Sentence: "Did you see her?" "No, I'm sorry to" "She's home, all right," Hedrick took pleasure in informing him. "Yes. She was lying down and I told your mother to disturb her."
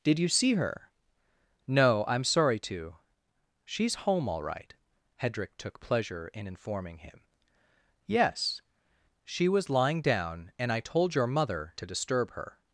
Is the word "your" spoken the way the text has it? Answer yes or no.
yes